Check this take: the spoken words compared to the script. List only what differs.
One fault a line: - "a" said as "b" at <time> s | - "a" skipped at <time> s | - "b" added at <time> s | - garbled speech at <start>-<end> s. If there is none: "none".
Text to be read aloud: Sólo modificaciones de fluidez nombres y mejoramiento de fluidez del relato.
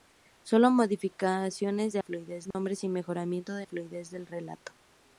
none